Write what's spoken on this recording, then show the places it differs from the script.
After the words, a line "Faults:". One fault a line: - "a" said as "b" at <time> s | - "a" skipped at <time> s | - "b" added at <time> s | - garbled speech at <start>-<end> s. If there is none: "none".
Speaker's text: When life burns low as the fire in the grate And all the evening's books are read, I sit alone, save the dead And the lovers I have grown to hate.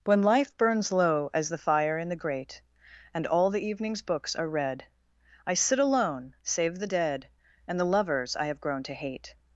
When life burns low as the fire in the grate And all the evening's books are read, I sit alone, save the dead And the lovers I have grown to hate.
Faults:
none